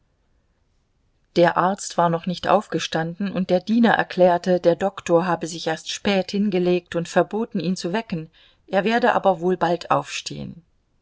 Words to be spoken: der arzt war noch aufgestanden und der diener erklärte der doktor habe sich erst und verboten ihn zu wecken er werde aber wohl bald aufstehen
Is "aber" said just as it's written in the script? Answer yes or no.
yes